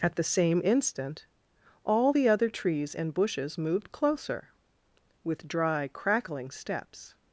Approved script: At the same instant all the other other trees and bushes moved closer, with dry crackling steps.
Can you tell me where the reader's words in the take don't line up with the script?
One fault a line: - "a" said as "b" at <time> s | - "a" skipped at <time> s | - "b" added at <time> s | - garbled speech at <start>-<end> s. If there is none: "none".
- "other" skipped at 2.5 s